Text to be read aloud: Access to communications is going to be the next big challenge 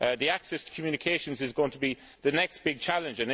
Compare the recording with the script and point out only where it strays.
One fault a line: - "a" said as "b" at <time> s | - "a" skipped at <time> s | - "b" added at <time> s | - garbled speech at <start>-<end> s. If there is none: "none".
none